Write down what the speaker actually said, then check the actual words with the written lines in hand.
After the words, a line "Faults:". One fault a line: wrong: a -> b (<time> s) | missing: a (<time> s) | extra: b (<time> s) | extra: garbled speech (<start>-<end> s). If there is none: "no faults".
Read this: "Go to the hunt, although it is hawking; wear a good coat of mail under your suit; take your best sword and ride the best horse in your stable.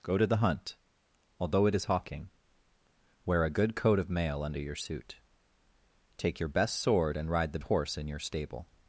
"Go to the hunt, although it is hawking; wear a good coat of mail under your suit; take your best sword and ride the horse in your stable.
Faults:
missing: best (7.6 s)